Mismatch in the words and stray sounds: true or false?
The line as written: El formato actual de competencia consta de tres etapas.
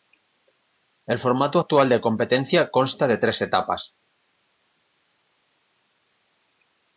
false